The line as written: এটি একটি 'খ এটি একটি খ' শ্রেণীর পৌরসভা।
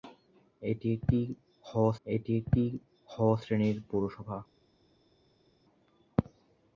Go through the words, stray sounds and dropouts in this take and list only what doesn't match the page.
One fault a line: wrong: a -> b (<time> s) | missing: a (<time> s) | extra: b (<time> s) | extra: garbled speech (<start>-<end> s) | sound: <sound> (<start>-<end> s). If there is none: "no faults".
no faults